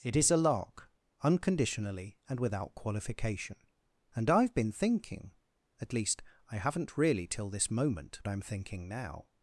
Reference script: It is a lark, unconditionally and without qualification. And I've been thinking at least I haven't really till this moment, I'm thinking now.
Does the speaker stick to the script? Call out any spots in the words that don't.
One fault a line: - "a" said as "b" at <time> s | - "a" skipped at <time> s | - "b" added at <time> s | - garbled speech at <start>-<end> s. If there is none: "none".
none